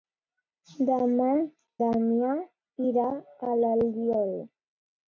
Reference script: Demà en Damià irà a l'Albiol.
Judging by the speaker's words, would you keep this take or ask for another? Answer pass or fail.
fail